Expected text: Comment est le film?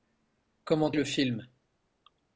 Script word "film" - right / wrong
right